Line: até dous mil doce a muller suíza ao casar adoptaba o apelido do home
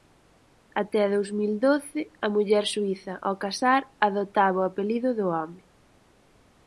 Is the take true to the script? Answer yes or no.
yes